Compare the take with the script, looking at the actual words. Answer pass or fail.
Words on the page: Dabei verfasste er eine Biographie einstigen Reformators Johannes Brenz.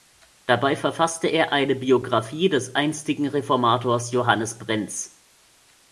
fail